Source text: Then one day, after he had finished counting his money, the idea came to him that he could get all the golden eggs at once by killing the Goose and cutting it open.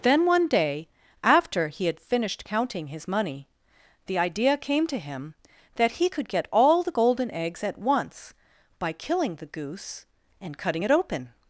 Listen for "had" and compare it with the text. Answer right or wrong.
right